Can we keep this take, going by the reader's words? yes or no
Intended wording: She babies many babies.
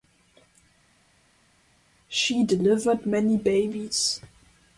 no